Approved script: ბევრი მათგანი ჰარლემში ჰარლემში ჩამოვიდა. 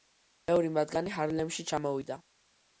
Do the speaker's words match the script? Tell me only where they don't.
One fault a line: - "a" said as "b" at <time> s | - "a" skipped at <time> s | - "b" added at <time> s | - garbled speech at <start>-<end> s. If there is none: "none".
- "ჰარლემში" skipped at 1.7 s